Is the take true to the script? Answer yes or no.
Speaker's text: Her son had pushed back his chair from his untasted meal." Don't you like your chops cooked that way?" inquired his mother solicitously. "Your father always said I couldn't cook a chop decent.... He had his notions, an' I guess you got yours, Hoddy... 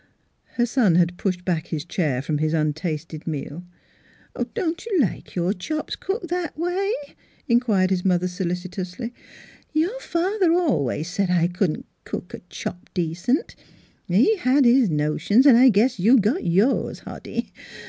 yes